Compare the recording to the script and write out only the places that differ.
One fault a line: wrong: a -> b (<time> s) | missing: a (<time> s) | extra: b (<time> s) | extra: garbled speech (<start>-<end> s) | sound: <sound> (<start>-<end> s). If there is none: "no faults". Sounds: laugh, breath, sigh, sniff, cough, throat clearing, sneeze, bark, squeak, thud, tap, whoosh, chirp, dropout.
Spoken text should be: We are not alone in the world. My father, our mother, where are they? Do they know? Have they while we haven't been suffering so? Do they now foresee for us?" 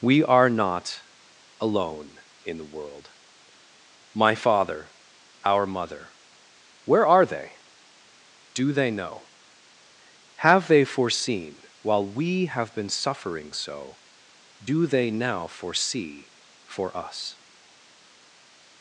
extra: foreseen (10.8 s)
wrong: haven't -> have (12.5 s)